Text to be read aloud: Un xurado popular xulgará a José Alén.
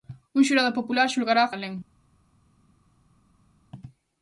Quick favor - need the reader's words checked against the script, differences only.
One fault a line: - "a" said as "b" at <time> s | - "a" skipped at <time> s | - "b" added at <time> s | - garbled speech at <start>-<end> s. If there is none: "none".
- "José" skipped at 1.5 s